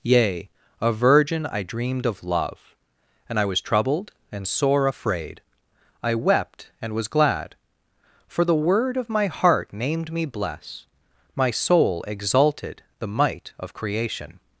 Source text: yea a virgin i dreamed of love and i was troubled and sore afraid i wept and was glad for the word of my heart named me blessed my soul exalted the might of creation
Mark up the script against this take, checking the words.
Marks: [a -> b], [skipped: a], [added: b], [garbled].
yea a virgin i dreamed of love and i was troubled and sore afraid i wept and was glad for the word of my heart named me [blessed -> bless] my soul exalted the might of creation